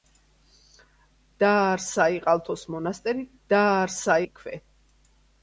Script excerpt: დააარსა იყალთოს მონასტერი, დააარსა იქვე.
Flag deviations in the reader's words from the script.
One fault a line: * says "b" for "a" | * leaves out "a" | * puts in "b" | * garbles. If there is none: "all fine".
all fine